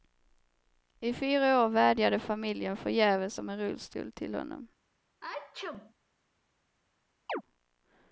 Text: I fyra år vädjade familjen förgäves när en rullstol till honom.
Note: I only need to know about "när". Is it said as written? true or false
false